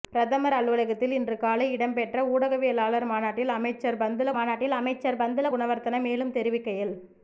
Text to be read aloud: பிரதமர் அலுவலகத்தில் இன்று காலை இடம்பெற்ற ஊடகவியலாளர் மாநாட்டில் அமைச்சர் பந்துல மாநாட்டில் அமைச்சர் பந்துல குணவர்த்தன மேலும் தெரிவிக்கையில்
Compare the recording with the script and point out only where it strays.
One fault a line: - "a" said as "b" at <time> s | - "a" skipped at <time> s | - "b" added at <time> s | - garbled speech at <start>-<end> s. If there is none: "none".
none